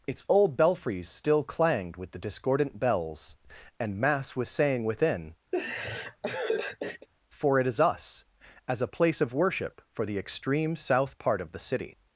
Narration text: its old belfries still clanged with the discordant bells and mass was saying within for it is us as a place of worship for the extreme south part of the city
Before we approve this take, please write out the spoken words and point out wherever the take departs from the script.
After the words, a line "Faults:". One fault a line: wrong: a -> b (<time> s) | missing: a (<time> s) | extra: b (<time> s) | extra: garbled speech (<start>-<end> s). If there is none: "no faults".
its old belfries still clanged with the discordant bells and mass was saying within for it is us as a place of worship for the extreme south part of the city
Faults:
no faults